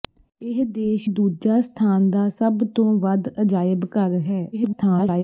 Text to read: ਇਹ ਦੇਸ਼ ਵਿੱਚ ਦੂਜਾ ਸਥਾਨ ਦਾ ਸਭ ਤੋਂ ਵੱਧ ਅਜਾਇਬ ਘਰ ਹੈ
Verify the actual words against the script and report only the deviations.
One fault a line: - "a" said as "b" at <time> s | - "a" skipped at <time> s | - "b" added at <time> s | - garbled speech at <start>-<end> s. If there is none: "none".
- "ਵਿੱਚ" skipped at 1.1 s
- garbled speech at 4.5-5.2 s